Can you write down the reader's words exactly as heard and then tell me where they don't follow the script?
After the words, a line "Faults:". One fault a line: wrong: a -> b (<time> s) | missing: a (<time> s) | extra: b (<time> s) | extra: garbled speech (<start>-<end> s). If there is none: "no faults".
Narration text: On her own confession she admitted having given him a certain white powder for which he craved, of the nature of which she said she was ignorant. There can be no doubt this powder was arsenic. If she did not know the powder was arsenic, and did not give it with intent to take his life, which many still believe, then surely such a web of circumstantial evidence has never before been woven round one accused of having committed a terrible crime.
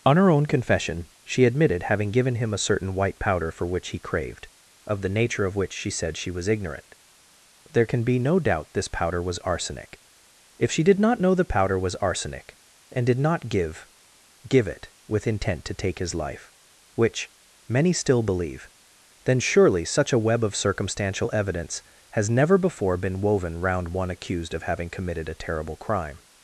On her own confession she admitted having given him a certain white powder for which he craved, of the nature of which she said she was ignorant. There can be no doubt this powder was arsenic. If she did not know the powder was arsenic, and did not give give it with intent to take his life, which many still believe, then surely such a web of circumstantial evidence has never before been woven round one accused of having committed a terrible crime.
Faults:
extra: give (14.5 s)